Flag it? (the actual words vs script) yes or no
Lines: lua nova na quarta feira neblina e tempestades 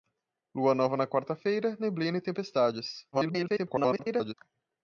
yes